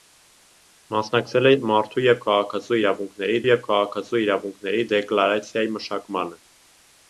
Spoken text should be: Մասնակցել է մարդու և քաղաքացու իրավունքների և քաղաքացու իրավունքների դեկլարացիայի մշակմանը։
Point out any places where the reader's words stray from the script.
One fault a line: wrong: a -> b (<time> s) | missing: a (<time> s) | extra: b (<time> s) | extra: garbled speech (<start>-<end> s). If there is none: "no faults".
no faults